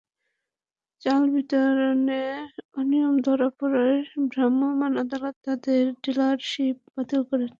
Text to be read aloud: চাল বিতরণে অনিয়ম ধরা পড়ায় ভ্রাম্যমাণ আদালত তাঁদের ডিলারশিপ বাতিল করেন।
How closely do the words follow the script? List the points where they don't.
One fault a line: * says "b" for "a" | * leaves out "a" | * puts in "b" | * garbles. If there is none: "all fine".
all fine